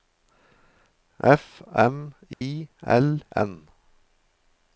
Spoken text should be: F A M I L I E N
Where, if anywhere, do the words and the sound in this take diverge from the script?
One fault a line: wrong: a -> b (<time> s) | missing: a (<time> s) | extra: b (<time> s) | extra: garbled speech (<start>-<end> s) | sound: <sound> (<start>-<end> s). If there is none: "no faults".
missing: A (1.6 s)
sound: dropout (2.3-2.4 s)
missing: I E (3.2 s)